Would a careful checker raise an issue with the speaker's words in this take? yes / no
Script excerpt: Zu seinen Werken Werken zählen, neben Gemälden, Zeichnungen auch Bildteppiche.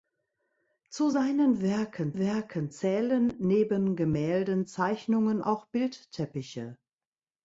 no